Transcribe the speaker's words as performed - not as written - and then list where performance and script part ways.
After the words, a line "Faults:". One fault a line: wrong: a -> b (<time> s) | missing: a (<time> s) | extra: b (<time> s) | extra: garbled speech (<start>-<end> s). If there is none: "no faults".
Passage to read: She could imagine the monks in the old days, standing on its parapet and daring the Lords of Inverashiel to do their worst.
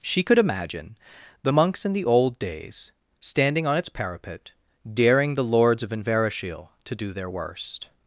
She could imagine the monks in the old days, standing on its parapet daring the Lords of Inverashiel to do their worst.
Faults:
missing: and (4.5 s)